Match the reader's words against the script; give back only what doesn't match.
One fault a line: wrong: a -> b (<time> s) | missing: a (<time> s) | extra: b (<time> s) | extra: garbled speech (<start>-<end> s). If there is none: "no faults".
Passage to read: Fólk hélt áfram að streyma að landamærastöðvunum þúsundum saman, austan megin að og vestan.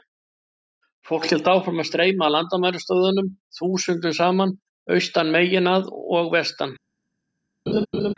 no faults